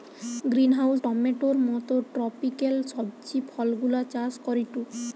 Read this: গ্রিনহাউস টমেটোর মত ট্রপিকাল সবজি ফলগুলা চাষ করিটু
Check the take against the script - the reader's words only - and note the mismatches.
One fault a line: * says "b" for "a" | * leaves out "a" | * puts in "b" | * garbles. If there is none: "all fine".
all fine